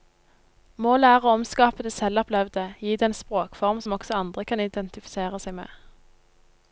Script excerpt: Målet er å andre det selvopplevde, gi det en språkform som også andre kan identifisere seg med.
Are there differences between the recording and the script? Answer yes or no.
yes